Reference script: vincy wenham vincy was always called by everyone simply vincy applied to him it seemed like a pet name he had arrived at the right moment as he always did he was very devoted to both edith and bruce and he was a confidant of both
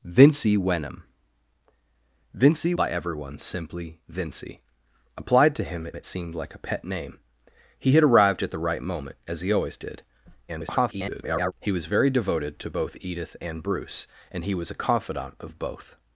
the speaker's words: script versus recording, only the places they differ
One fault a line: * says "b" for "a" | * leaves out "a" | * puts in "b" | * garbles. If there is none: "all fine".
* leaves out "was always called"
* puts in "it"
* garbles